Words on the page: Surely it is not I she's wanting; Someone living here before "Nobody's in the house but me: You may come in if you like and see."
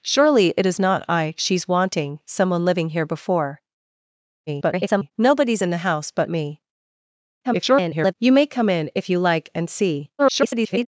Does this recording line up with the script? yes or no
no